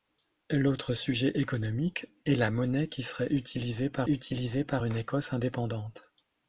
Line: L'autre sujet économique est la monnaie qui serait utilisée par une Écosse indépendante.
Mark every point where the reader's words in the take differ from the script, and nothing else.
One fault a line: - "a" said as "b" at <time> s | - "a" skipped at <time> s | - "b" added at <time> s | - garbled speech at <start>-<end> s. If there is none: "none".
- "utilisée par" added at 4.1 s